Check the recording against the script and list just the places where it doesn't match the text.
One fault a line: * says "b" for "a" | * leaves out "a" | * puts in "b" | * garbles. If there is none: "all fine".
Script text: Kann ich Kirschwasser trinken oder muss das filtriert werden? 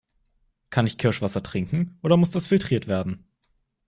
all fine